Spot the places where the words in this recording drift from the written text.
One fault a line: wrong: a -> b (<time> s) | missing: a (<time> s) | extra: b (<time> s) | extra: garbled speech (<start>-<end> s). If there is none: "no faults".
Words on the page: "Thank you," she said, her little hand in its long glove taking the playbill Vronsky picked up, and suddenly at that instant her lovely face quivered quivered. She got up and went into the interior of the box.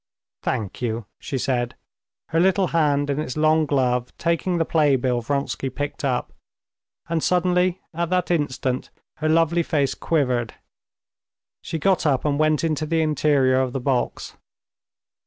missing: quivered (10.6 s)